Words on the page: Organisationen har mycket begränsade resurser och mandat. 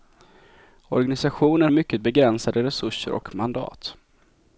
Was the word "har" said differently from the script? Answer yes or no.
yes